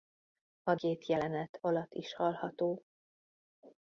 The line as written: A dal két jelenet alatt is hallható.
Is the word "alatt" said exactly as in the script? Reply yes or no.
yes